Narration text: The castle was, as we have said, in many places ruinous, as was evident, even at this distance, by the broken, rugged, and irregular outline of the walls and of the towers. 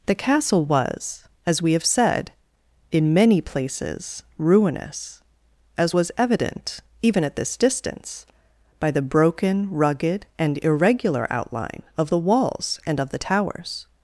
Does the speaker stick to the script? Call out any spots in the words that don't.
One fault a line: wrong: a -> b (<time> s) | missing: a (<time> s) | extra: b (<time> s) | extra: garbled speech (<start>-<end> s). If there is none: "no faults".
no faults